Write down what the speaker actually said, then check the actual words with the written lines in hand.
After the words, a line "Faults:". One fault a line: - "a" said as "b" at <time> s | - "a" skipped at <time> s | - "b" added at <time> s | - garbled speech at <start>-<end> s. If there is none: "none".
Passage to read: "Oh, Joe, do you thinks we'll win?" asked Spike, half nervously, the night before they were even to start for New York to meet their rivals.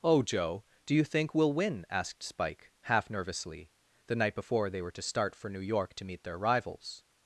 "Oh, Joe, do you think we'll win?" asked Spike, half nervously, the night before they were to start for New York to meet their rivals.
Faults:
- "thinks" said as "think" at 1.0 s
- "even" skipped at 4.9 s